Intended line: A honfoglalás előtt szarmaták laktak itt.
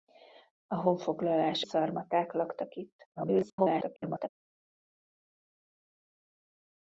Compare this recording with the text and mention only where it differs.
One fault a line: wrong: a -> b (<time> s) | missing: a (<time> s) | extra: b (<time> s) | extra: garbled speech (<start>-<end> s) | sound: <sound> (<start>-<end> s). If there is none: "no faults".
missing: előtt (1.6 s)
extra: garbled speech (3.2-4.3 s)